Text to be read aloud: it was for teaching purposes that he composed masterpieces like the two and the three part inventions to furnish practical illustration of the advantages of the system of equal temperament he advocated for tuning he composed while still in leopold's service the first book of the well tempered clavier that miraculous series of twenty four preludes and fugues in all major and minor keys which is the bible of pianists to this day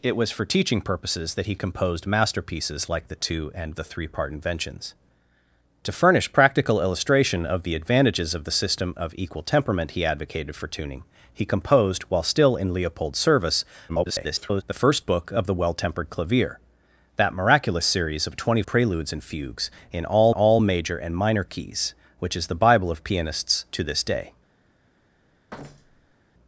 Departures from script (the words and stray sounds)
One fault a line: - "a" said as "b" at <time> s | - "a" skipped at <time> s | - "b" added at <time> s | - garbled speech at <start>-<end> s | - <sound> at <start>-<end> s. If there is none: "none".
- garbled speech at 13.9-14.6 s
- "four" skipped at 18.6 s
- "all" added at 20.3 s
- thud at 25.5-26.2 s